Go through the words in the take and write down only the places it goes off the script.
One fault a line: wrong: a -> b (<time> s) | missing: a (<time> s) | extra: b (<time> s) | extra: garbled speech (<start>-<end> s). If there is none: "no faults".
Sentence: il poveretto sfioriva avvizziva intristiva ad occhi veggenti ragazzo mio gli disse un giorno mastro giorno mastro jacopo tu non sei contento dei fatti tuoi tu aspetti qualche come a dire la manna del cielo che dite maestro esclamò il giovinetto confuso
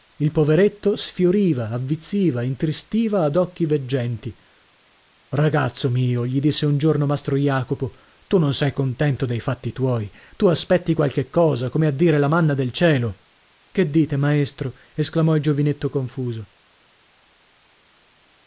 missing: giorno mastro (7.3 s)
extra: cosa (11.3 s)